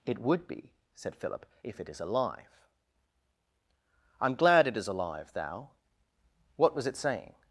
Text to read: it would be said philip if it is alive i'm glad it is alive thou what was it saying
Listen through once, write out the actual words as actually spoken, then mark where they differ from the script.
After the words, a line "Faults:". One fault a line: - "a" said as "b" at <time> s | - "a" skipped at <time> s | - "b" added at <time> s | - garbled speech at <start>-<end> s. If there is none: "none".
it would be said philip if it is alive i'm glad it is alive thou what was it saying
Faults:
none